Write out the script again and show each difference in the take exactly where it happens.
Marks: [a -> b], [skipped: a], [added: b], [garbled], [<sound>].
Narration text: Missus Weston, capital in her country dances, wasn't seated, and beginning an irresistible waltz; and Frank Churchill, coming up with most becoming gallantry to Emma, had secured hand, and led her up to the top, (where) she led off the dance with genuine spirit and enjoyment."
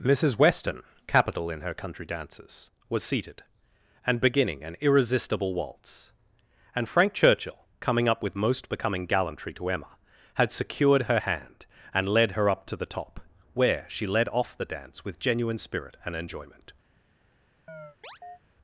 Missus Weston, capital in her country dances, [wasn't -> was] seated, and beginning an irresistible waltz; and Frank Churchill, coming up with most becoming gallantry to Emma, had secured [added: her] hand, and led her up to the top, (where) she led off the dance with genuine spirit and enjoyment." [chirp]